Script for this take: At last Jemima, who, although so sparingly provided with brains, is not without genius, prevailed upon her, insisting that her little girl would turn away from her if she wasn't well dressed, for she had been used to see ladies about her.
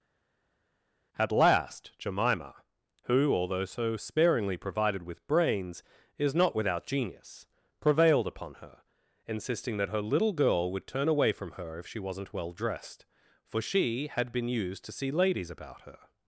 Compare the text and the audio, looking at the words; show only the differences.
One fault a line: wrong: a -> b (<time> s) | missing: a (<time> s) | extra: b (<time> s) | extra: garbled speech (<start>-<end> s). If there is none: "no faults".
no faults